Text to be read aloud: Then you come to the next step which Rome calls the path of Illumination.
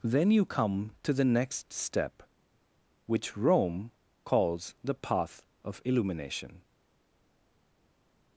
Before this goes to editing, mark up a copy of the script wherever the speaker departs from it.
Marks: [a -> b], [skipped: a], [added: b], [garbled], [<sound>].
Then you come to the next step which Rome calls the path of Illumination.